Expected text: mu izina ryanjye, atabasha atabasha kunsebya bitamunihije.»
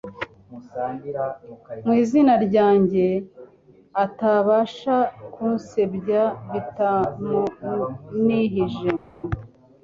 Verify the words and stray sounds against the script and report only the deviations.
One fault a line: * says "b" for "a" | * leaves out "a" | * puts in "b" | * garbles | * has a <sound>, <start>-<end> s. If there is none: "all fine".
* leaves out "atabasha"